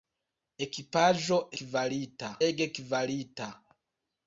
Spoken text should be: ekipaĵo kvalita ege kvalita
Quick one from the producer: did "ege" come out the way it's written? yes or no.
yes